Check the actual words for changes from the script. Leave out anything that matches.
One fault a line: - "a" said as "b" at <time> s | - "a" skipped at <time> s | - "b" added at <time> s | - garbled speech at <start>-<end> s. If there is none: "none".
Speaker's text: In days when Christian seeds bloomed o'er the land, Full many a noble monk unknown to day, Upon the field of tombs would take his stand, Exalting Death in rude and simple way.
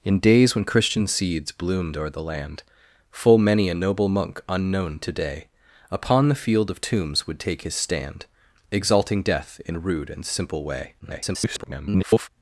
- garbled speech at 11.0-12.3 s